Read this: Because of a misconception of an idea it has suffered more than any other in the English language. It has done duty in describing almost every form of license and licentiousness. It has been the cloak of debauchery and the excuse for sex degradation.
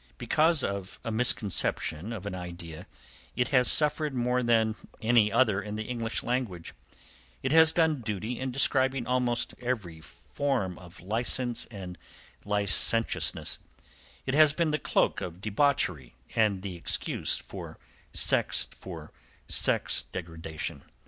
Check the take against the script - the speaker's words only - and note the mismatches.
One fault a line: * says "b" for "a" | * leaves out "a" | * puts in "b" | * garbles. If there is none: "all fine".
* puts in "for sex"